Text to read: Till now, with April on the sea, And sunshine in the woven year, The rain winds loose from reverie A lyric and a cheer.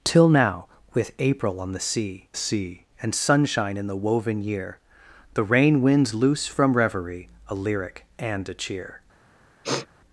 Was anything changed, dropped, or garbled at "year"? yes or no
no